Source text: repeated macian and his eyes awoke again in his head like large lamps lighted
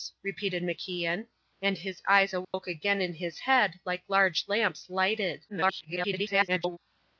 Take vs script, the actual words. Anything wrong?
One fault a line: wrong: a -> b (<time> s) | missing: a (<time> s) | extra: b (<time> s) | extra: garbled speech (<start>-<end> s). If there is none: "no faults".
extra: garbled speech (5.5-6.8 s)